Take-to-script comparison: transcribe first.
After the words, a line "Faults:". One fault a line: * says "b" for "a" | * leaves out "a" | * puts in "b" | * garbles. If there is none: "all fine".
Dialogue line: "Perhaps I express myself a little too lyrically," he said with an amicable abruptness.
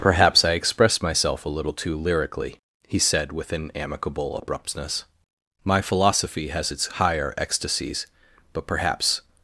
"Perhaps I express myself a little too lyrically," he said with an amicable abruptness. "My philosophy has its higher ecstasies, but perhaps
Faults:
* puts in "My philosophy has its higher ecstasies but perhaps"